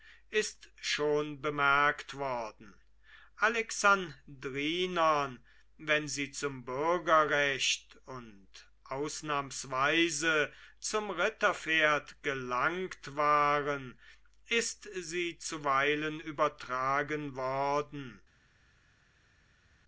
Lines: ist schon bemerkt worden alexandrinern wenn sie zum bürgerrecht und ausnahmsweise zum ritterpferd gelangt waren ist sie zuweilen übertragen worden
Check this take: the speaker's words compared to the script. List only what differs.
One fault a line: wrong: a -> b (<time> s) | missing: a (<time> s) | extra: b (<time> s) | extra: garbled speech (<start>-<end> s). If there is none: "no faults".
no faults